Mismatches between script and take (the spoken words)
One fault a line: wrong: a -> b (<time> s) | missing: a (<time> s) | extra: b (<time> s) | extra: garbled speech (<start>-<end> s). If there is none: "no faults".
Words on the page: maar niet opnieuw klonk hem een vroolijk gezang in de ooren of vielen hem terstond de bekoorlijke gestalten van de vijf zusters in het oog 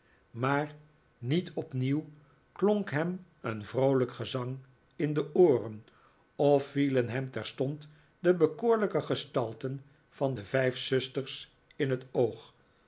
no faults